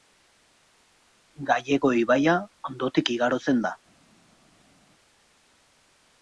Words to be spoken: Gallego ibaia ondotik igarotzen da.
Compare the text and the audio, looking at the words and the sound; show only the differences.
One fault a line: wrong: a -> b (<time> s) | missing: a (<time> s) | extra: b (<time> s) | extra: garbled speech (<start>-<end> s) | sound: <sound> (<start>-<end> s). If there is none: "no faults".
no faults